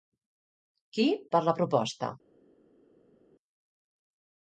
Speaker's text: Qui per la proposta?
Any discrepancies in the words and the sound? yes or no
no